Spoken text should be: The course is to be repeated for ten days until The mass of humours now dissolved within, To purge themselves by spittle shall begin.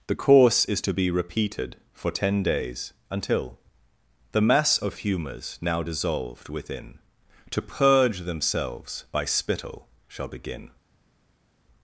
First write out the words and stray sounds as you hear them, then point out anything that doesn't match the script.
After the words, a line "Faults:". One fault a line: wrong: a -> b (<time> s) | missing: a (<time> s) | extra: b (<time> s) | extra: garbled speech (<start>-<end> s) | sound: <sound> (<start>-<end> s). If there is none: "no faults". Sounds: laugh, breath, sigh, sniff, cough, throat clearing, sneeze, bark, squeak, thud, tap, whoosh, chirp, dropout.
The course is to be repeated for ten days until The mass of humours now dissolved within, To purge themselves by spittle shall begin.
Faults:
no faults